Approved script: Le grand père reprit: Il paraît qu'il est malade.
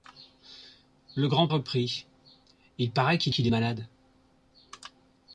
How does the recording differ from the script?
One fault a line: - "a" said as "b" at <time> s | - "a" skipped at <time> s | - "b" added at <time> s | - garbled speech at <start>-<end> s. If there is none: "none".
- "père" skipped at 1.5 s
- "qu'il" added at 3.3 s